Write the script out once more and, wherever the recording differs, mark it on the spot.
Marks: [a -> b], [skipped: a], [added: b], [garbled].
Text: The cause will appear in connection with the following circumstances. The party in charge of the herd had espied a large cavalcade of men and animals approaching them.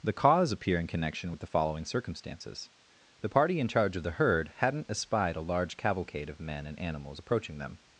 The cause [skipped: will] appear in connection with the following circumstances. The party in charge of the herd [had -> hadn't] espied a large cavalcade of men and animals approaching them.